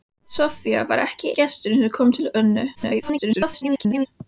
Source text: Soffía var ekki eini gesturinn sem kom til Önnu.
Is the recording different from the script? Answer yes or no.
yes